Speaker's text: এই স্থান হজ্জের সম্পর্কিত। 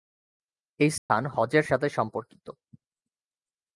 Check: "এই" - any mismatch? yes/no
no